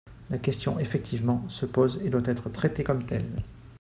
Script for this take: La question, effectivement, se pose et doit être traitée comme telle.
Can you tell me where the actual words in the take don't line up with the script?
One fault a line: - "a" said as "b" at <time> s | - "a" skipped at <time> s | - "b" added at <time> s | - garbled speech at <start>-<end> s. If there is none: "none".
none